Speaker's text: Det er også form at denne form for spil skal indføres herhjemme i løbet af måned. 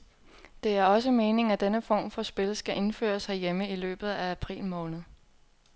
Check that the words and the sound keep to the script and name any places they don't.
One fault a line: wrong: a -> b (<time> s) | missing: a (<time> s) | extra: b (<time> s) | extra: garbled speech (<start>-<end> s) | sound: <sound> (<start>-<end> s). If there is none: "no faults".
wrong: form -> meningen (1.1 s)
extra: april (4.3 s)